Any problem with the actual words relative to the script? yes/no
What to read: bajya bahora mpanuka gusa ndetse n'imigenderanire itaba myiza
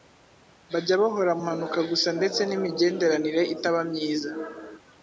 no